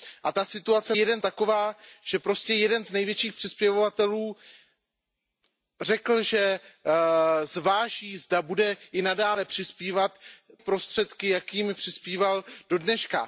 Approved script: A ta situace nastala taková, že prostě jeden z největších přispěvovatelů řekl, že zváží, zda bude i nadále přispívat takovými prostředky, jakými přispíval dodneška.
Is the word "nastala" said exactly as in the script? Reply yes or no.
no